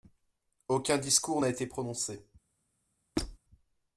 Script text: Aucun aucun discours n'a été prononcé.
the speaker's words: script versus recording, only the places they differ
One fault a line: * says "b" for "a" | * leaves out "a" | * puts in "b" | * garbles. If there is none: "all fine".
* leaves out "aucun"